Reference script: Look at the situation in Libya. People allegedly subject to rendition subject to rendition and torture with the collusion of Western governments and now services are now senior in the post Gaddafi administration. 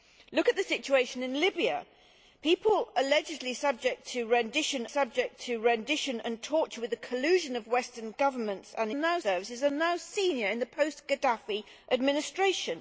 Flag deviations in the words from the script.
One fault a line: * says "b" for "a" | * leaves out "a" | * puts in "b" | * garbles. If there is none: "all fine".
all fine